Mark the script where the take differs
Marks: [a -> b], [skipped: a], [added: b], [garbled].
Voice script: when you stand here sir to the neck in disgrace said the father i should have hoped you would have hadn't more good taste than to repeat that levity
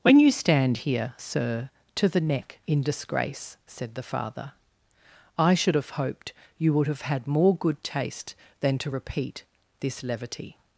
when you stand here sir to the neck in disgrace said the father i should have hoped you would have [hadn't -> had] more good taste than to repeat [that -> this] levity